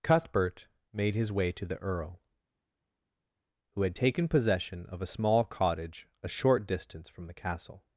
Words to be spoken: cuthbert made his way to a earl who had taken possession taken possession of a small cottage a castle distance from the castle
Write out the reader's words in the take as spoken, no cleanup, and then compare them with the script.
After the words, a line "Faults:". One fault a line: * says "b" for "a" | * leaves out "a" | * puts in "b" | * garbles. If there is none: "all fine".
cuthbert made his way to the earl who had taken possession of a small cottage a short distance from the castle
Faults:
* says "the" for "a"
* leaves out "taken possession"
* says "short" for "castle"